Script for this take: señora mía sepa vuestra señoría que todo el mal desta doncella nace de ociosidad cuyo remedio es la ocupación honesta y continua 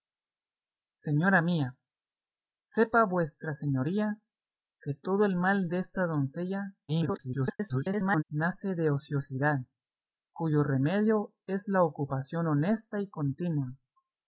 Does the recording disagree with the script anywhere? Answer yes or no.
yes